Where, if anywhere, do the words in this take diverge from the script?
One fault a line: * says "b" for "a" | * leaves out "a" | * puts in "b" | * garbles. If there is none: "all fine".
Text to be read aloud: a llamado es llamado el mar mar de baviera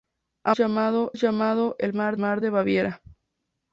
all fine